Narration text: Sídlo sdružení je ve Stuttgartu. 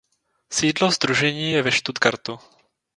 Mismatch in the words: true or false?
false